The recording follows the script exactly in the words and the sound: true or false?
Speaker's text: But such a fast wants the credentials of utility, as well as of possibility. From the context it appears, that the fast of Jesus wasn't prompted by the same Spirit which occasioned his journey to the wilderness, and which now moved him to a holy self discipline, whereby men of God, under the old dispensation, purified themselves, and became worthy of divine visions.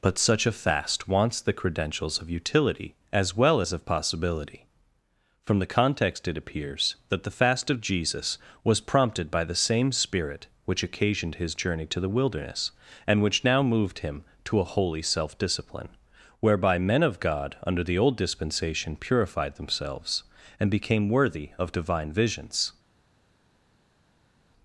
false